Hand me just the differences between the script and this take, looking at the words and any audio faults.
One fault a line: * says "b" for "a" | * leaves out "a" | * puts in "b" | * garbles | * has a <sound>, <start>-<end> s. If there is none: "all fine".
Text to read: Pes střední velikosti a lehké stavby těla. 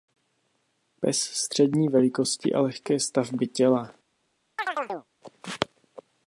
* has a chirp, 4.6-5.1 s